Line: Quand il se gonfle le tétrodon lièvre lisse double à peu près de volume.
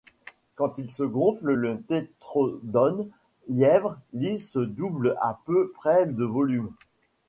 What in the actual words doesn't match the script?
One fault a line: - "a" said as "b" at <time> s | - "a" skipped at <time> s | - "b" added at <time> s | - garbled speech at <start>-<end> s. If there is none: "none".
none